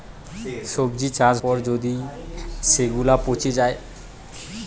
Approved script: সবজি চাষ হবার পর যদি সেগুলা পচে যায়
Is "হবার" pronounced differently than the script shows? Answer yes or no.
yes